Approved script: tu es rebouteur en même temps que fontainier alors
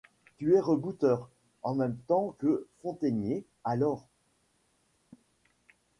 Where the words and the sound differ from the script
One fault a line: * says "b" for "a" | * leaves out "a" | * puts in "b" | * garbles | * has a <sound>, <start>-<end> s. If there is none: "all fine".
* has a laugh, 5.1-5.3 s